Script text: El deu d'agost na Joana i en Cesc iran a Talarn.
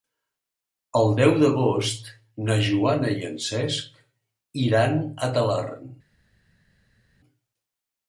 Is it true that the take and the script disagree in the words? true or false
false